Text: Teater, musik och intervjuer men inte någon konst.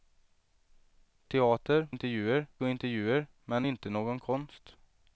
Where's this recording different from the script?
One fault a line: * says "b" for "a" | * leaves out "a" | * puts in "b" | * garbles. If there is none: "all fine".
* says "intervjuer" for "musik"